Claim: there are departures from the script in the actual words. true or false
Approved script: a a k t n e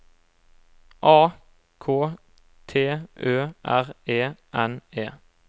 true